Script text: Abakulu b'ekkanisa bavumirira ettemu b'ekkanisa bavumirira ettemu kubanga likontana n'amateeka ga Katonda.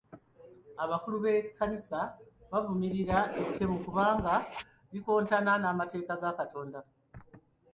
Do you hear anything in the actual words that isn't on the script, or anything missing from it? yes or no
yes